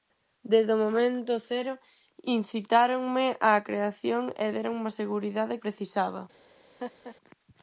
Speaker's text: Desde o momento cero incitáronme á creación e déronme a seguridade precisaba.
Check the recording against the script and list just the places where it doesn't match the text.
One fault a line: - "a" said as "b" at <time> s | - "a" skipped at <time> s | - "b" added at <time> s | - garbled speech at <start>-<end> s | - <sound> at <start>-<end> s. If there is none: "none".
- laugh at 6.8-7.2 s